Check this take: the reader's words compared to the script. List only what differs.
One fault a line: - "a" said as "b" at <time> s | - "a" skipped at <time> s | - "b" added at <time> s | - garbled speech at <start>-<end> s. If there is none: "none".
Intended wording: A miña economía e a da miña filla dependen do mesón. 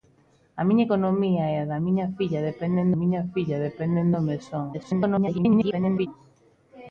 - "miña filla dependen" added at 3.0 s
- garbled speech at 4.7-6.1 s